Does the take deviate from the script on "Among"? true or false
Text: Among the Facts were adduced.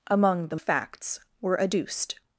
false